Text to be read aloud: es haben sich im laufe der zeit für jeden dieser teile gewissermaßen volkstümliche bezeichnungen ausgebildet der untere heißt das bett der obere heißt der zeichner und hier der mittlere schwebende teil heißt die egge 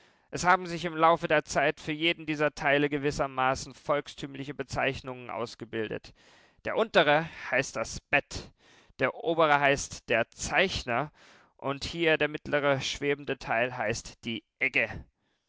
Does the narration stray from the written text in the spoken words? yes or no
no